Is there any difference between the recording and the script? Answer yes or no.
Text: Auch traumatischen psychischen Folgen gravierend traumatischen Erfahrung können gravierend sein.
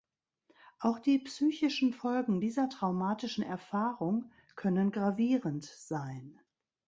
yes